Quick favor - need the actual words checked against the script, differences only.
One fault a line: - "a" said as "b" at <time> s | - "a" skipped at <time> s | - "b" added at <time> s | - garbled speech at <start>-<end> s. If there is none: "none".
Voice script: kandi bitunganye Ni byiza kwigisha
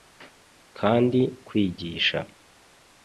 - "bitunganye Ni byiza" skipped at 1.2 s